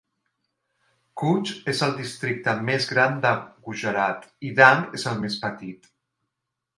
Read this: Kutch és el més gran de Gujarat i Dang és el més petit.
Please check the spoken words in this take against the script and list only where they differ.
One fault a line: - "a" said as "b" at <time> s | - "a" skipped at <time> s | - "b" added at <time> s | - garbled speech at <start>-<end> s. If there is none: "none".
- "districte" added at 2.0 s